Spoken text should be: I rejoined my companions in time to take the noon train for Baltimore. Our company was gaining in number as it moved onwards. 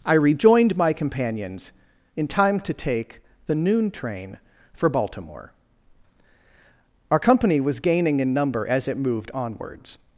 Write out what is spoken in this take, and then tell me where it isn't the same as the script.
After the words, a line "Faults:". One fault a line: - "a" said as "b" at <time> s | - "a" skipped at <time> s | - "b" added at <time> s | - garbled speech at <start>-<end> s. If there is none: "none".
I rejoined my companions in time to take the noon train for Baltimore. Our company was gaining in number as it moved onwards.
Faults:
none